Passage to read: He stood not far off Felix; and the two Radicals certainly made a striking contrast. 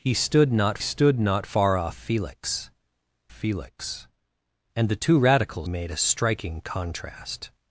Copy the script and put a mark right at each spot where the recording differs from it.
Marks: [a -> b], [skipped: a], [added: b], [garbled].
He stood not [added: stood not] far off Felix; [added: Felix] and the two Radicals [skipped: certainly] made a striking contrast.